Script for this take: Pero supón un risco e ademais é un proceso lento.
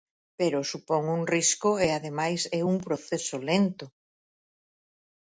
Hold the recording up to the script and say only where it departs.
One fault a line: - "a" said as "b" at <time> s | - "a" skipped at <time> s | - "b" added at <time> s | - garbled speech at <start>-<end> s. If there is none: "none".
none